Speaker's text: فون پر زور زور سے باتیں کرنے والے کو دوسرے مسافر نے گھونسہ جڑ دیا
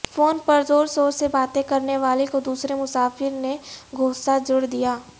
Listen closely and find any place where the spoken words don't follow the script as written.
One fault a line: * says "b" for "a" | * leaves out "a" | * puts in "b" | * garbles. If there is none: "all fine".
all fine